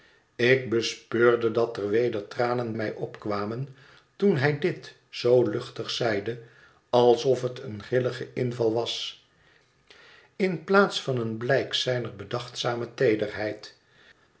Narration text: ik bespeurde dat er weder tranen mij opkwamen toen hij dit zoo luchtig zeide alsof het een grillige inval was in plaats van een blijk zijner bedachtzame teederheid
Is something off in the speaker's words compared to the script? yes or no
no